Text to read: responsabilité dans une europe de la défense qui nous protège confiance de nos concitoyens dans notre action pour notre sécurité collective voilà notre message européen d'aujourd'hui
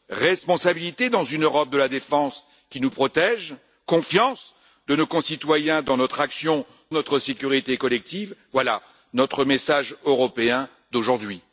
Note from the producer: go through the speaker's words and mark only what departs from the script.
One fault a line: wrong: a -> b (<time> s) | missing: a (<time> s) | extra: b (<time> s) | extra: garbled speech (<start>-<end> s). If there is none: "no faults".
missing: pour (6.7 s)